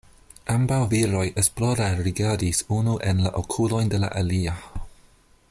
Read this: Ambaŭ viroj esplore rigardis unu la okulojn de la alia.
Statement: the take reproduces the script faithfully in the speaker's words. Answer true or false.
false